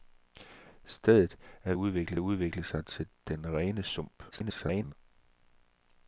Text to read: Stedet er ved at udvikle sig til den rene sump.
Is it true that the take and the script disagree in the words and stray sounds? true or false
true